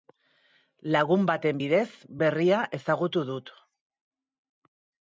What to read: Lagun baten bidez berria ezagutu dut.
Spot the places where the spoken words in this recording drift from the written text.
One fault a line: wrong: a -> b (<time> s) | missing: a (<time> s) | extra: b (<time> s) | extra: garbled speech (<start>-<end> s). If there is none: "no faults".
no faults